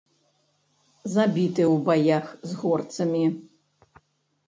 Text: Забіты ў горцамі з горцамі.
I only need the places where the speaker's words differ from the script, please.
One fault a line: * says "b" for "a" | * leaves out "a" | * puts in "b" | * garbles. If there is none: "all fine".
* says "баях" for "горцамі"